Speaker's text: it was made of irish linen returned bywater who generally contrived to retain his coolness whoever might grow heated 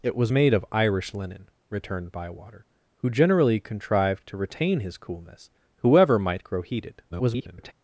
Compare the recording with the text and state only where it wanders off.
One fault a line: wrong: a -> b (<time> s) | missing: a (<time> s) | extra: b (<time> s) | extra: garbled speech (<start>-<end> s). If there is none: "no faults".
extra: garbled speech (7.1-7.7 s)